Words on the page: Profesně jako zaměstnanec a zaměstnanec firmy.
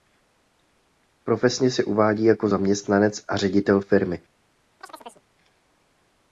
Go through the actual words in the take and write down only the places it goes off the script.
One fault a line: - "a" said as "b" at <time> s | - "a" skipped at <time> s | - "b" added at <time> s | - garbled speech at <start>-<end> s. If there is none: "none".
- "se uvádí" added at 1.7 s
- "zaměstnanec" said as "ředitel" at 3.4 s